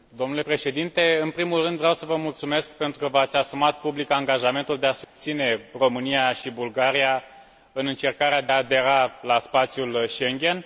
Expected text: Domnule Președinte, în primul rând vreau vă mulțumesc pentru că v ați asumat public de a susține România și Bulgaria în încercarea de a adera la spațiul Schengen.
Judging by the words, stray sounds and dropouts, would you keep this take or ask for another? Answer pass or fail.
fail